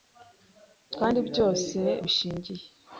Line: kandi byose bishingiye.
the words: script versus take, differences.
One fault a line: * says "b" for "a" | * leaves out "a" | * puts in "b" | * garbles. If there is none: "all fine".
all fine